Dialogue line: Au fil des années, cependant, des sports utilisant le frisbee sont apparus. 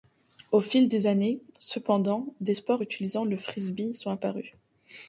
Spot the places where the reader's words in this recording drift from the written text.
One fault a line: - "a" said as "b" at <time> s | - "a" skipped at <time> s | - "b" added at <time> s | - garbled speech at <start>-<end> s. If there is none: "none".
none